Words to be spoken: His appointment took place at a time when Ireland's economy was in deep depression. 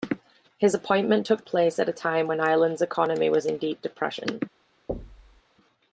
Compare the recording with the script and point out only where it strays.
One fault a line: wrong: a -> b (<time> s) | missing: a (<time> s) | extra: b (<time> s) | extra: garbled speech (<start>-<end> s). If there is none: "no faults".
no faults